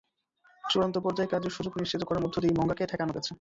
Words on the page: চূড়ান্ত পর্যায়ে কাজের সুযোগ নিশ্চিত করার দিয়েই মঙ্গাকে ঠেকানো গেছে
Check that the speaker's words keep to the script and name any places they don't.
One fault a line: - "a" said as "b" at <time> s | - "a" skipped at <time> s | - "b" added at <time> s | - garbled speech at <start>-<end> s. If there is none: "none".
- "মধ্য" added at 2.2 s